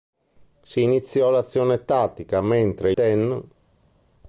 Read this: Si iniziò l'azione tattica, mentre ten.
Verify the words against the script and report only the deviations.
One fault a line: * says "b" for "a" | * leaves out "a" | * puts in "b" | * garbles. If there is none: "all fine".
all fine